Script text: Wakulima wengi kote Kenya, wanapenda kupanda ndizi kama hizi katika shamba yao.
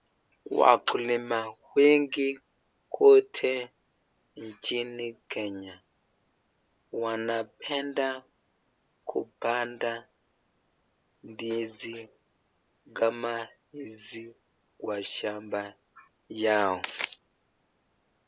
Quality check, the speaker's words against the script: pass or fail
fail